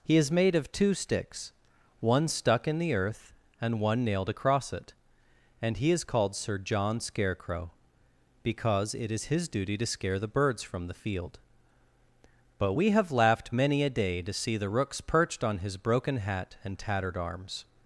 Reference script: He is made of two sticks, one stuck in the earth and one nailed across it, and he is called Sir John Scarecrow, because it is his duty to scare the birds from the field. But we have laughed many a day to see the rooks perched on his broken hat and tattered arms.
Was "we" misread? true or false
false